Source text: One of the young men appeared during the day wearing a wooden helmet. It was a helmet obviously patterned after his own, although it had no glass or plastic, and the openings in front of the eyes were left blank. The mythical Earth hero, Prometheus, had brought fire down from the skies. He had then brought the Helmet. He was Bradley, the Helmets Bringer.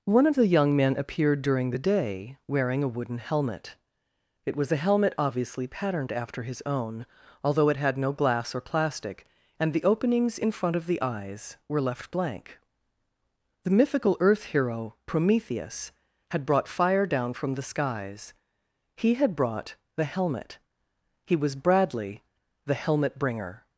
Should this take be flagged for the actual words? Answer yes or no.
yes